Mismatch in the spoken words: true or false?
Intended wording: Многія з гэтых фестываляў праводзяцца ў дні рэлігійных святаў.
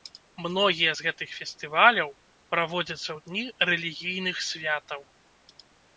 false